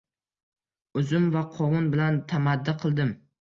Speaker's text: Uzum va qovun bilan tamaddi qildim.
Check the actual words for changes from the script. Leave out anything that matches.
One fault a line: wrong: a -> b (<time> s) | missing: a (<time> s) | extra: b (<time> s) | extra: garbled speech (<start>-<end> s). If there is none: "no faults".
no faults